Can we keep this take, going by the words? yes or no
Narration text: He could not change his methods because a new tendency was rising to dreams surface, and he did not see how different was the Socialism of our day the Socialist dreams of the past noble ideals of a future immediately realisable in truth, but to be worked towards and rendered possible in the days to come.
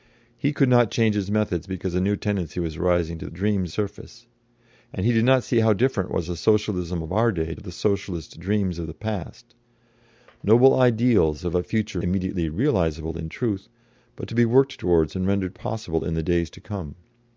yes